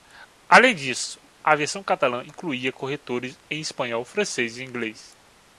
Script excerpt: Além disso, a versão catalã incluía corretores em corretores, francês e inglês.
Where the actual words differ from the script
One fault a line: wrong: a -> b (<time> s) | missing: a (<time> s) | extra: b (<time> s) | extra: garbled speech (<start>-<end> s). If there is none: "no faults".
wrong: corretores -> espanhol (3.6 s)